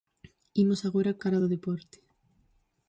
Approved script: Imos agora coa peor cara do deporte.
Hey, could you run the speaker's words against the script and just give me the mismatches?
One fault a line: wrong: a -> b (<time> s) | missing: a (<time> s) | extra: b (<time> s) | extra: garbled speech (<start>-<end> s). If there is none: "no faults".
missing: coa peor (1.2 s)